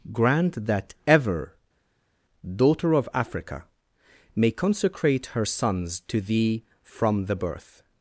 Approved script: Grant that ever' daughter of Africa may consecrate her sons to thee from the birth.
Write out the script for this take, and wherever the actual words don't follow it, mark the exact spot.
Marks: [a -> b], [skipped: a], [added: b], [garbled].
Grant that ever' daughter of Africa may consecrate her sons to thee from the birth.